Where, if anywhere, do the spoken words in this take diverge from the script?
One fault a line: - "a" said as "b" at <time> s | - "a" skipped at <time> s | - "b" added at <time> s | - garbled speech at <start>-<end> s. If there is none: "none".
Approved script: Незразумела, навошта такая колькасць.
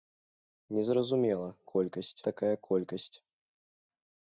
- "навошта" said as "колькасць" at 1.7 s